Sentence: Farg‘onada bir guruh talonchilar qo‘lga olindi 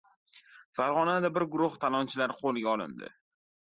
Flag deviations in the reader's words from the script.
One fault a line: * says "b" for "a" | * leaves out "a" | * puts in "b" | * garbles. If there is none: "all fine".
all fine